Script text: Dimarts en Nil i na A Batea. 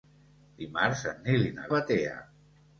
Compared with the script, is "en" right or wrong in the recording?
right